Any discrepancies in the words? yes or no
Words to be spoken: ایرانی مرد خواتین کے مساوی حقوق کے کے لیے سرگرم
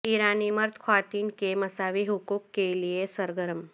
yes